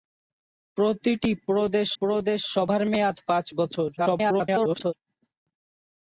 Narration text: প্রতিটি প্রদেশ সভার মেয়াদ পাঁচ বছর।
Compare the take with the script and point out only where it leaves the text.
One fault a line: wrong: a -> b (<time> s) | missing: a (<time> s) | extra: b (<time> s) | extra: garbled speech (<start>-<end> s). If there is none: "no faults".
extra: প্রদেশ (2.0 s)
extra: garbled speech (4.0-4.9 s)